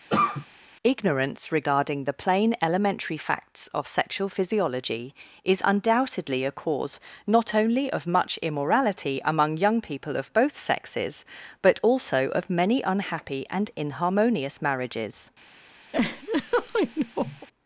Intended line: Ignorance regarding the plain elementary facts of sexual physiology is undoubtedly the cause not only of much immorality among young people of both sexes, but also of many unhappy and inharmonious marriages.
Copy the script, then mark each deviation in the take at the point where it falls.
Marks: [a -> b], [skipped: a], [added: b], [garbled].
Ignorance regarding the plain elementary facts of sexual physiology is undoubtedly [the -> a] cause not only of much immorality among young people of both sexes, but also of many unhappy and inharmonious marriages.